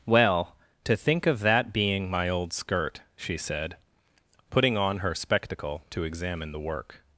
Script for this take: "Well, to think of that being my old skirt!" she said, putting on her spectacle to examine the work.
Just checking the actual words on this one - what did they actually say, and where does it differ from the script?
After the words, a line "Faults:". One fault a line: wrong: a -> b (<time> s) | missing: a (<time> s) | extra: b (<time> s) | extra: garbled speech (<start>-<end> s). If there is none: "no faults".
"Well, to think of that being my old skirt!" she said, putting on her spectacle to examine the work.
Faults:
no faults